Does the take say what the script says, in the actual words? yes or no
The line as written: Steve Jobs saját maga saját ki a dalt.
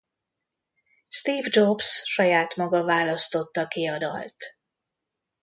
no